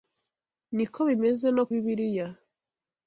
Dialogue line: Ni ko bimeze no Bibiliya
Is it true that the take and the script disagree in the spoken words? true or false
false